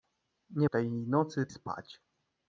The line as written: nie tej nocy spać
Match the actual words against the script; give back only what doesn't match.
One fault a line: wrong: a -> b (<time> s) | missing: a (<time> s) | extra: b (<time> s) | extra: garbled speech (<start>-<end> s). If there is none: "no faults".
no faults